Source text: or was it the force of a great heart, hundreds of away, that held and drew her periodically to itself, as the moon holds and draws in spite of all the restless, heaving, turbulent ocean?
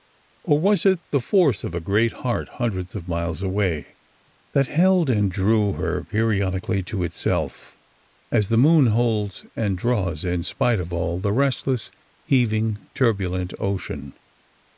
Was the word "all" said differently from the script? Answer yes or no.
no